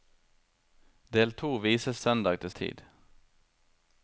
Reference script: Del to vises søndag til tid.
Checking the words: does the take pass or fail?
pass